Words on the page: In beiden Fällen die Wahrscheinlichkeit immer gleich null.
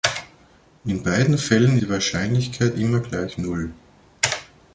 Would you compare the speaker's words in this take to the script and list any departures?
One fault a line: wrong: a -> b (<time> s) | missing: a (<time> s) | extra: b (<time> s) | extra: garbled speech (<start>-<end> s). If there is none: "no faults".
no faults